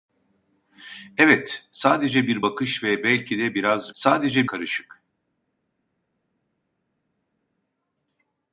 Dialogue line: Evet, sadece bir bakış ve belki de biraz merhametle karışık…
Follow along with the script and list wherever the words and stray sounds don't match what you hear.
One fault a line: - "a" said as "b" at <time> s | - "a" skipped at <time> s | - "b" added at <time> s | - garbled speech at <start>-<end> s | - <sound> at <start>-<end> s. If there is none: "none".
- "merhametle" said as "sadece" at 3.9 s